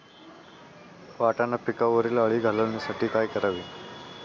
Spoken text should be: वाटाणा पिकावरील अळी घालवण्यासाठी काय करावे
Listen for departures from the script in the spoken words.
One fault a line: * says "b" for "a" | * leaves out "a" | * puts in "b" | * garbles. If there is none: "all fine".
all fine